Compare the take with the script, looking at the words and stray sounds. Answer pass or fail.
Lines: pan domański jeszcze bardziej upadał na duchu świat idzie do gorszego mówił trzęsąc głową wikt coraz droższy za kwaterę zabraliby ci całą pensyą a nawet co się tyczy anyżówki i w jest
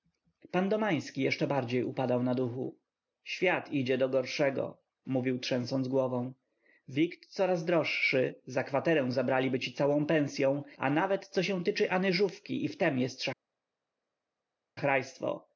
fail